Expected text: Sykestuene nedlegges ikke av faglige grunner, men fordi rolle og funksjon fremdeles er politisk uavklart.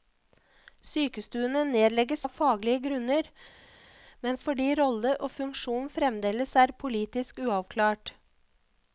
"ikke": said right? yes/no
no